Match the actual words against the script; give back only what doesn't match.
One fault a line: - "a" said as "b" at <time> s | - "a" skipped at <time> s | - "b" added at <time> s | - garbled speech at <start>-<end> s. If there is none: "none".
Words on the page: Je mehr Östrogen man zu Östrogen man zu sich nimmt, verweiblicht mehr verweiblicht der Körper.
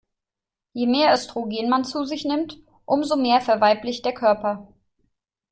- "Östrogen man zu" skipped at 2.0 s
- "verweiblicht" said as "umso" at 2.8 s